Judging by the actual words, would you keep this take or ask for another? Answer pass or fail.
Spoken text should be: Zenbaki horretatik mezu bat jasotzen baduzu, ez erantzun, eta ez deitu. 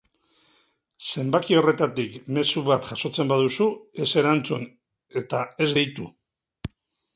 pass